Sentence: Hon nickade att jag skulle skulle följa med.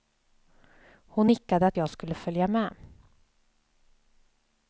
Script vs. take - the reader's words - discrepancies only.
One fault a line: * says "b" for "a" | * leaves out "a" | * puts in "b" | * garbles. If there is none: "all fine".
* leaves out "skulle"